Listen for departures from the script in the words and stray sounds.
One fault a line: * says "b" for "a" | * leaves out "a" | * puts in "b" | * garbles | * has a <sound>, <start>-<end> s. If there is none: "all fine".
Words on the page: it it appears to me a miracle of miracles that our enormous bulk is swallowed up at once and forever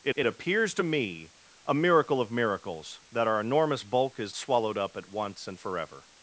all fine